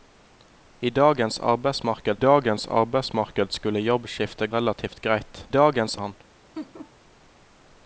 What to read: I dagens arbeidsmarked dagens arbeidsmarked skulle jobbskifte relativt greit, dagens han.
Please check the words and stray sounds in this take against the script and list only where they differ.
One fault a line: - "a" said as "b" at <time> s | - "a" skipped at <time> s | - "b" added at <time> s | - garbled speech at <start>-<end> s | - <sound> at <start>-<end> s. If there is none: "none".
- laugh at 6.5-6.9 s